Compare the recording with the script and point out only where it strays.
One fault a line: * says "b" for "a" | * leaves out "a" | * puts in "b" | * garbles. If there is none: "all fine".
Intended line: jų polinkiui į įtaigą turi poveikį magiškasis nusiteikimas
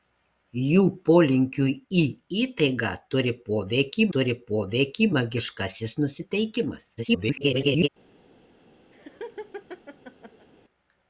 * puts in "turi poveikį"
* garbles